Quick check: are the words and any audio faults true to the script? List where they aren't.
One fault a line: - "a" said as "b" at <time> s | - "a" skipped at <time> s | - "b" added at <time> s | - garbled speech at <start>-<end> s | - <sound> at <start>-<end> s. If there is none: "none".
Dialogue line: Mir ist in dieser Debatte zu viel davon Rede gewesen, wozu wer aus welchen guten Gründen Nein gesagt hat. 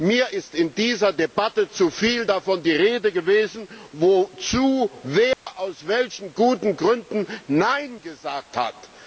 - "die" added at 2.6 s
- dropout at 5.3-5.5 s